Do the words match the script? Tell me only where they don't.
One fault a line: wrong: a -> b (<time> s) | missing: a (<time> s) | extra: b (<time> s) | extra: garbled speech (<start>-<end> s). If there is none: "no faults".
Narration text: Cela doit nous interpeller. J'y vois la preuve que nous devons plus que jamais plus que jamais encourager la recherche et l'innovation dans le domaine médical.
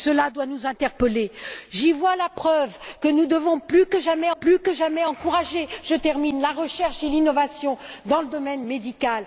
no faults